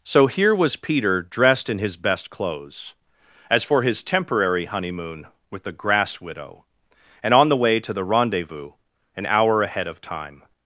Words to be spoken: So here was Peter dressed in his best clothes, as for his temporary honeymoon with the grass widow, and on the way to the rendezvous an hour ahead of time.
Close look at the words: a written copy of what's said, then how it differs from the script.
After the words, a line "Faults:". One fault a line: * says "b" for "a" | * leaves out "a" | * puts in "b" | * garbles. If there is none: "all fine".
So here was Peter dressed in his best clothes, as for his temporary honeymoon with the grass widow, and on the way to the rendezvous an hour ahead of time.
Faults:
all fine